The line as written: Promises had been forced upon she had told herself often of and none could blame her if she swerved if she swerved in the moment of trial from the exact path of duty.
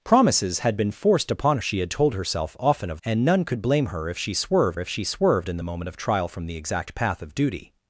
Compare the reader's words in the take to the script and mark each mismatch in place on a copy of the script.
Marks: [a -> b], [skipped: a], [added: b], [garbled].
Promises had been forced upon she had told herself often of and none could blame her if she swerved if she swerved in the moment of trial from the exact path of duty.